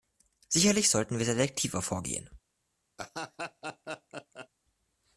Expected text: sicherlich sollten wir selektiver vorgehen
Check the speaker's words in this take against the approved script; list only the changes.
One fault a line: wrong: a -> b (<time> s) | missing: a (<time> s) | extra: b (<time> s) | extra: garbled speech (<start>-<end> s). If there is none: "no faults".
no faults